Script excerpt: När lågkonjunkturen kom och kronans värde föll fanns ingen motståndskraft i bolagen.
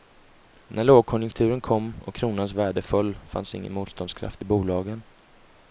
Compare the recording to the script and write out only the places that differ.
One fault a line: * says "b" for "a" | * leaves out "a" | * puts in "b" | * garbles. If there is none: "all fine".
all fine